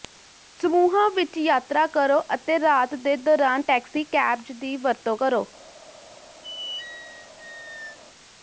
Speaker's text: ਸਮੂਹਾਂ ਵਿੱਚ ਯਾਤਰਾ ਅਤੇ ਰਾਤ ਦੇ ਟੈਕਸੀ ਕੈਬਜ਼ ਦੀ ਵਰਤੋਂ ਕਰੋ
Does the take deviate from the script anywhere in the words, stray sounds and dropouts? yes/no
yes